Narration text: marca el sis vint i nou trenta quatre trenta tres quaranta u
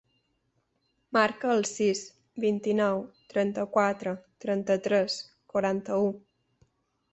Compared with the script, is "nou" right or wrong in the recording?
right